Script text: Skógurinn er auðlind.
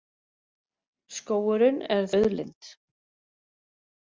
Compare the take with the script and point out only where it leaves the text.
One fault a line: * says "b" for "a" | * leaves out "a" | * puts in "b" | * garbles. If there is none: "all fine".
all fine